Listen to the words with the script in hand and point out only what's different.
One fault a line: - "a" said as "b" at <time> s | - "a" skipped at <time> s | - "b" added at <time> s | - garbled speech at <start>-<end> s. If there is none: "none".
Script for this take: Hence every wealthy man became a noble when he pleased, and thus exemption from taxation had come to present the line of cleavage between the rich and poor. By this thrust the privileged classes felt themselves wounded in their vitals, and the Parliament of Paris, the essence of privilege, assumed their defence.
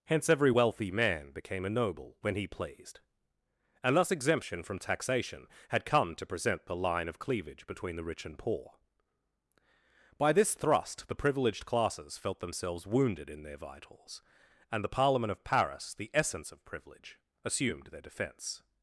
none